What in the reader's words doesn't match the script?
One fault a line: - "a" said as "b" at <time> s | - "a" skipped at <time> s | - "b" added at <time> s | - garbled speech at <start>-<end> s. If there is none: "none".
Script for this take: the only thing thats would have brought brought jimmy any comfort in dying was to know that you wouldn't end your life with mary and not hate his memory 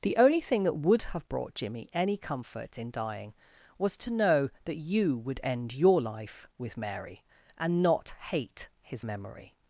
- "thats" said as "that" at 0.6 s
- "brought" skipped at 1.5 s
- "wouldn't" said as "would" at 5.2 s